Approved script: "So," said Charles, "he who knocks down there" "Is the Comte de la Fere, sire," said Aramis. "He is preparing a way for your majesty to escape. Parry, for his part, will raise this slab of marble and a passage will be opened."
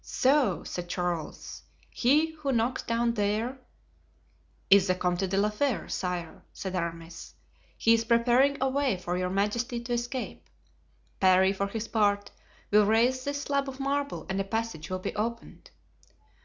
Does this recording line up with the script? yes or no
yes